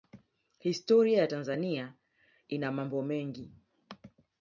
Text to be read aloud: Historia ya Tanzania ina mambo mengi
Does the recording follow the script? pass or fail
pass